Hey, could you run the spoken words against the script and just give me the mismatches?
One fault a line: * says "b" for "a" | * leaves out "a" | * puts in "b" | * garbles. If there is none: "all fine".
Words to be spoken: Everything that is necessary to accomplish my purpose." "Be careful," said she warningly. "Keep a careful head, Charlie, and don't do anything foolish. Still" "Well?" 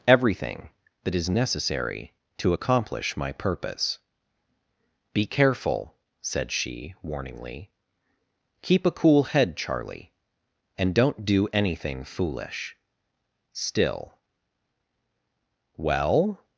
* says "cool" for "careful"